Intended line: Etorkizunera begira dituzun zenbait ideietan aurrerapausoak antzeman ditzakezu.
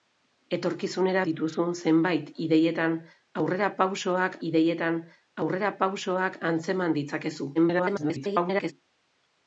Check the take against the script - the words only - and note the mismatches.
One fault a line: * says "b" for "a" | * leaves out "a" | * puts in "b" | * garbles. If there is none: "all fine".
* leaves out "begira"
* puts in "ideietan aurrerapausoak"
* garbles